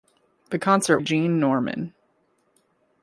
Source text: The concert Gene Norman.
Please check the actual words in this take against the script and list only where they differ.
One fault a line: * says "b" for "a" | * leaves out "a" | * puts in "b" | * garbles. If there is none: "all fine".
all fine